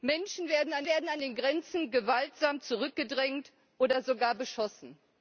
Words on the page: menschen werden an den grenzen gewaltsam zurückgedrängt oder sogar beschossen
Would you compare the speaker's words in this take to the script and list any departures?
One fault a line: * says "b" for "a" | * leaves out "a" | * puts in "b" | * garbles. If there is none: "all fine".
* puts in "werden an"